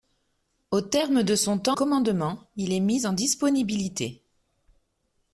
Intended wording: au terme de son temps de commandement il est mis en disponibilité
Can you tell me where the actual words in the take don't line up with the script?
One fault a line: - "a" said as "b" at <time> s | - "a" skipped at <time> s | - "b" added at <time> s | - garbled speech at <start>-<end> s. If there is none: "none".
- "de" skipped at 1.8 s